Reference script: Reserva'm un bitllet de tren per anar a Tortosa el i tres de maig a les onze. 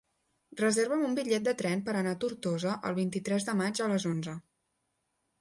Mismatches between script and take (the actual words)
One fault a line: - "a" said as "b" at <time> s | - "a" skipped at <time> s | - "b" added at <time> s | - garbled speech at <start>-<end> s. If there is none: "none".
- "vint" added at 3.0 s